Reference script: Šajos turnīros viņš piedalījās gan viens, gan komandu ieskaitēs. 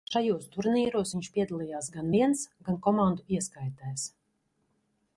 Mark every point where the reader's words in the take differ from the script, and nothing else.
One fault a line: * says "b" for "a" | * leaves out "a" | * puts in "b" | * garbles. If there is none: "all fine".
all fine